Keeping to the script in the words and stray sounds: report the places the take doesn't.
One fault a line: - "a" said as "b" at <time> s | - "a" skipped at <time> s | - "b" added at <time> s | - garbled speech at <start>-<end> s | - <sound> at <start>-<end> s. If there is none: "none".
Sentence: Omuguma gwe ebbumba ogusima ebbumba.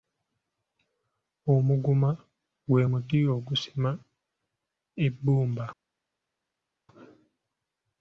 - "ebbumba" said as "muti" at 2.9 s